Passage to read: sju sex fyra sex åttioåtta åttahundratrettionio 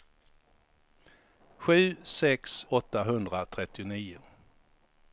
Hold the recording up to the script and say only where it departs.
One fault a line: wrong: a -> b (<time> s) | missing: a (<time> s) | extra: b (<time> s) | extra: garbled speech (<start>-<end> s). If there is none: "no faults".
missing: fyra sex åttioåtta (2.7 s)